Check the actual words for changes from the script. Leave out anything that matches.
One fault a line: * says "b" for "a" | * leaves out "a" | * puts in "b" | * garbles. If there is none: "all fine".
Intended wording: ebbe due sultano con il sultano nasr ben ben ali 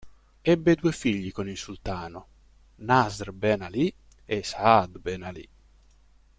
* says "figli" for "sultano"
* puts in "ali e saad"